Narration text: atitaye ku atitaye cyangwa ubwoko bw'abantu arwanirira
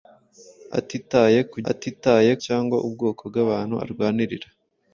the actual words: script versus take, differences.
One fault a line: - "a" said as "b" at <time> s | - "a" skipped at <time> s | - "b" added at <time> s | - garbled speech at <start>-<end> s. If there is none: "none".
none